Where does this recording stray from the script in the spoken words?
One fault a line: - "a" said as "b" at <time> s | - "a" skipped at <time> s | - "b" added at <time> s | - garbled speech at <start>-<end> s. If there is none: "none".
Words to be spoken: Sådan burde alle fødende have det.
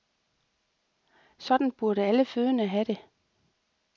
none